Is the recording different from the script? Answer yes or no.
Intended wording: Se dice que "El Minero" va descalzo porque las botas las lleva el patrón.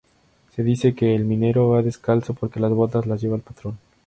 no